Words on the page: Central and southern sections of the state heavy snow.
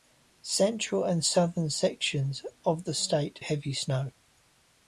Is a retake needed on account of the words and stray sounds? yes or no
no